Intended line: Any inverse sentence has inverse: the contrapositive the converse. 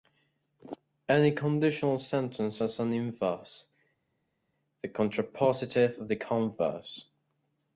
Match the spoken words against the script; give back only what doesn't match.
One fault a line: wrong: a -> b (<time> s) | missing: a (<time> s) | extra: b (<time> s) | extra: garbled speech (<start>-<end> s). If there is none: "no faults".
wrong: inverse -> conditional (1.3 s)
extra: an (2.8 s)
extra: of (6.0 s)